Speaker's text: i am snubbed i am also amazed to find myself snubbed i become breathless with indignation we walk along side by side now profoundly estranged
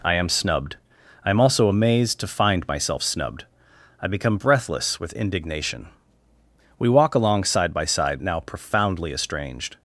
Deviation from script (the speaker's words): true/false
false